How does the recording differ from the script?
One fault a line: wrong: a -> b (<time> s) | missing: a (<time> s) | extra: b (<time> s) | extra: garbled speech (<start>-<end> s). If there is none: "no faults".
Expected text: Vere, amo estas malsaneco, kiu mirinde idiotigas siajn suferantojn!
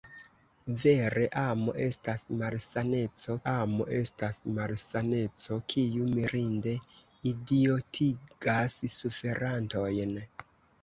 extra: amo estas malsaneco (3.5 s)
missing: siajn (8.8 s)